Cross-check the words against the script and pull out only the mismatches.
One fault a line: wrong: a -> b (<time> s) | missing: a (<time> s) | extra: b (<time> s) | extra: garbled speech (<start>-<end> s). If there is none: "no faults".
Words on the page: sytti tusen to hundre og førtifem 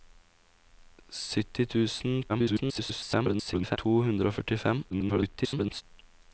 extra: garbled speech (2.3-3.8 s)
extra: garbled speech (4.9-5.8 s)